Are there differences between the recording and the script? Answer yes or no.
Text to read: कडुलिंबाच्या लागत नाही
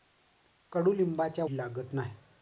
no